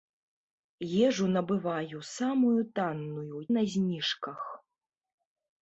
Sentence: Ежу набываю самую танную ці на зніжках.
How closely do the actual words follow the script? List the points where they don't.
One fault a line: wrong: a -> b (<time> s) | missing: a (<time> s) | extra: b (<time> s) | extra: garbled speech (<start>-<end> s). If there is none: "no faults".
missing: ці (3.4 s)